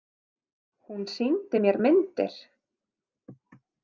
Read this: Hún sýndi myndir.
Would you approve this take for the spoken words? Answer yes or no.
no